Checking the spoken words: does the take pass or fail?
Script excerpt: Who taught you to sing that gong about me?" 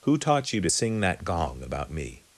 pass